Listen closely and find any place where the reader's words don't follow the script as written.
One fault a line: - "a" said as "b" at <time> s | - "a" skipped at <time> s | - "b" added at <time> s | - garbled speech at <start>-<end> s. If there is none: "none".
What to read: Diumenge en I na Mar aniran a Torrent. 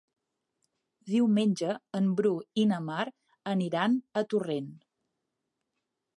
- "Bru" added at 2.2 s